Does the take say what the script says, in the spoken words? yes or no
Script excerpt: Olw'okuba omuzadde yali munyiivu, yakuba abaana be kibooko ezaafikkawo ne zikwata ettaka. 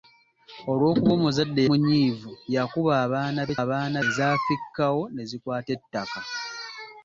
no